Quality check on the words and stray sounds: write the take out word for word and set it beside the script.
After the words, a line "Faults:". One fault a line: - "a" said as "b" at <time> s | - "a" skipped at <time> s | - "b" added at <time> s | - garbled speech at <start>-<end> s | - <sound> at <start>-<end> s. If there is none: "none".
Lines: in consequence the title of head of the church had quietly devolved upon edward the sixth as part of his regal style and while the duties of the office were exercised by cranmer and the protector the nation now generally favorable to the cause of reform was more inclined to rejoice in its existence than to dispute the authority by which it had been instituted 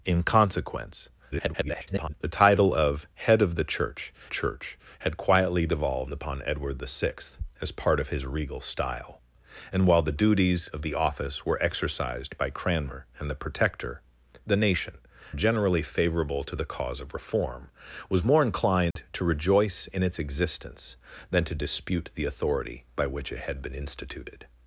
in consequence [garbled] the title of head of the church church had quietly devolved upon edward the sixth as part of his regal style and while the duties of the office were exercised by cranmer and the protector the nation generally favorable to the cause of reform was more inclined to rejoice in its existence than to dispute the authority by which it had been instituted
Faults:
- garbled speech at 1.3-2.1 s
- "church" added at 4.3 s
- "now" skipped at 15.0 s
- dropout at 18.9-19.0 s